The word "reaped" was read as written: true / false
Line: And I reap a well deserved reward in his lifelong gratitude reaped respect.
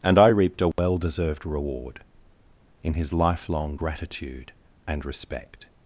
false